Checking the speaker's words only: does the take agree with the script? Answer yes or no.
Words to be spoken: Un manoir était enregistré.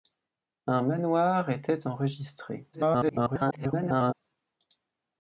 no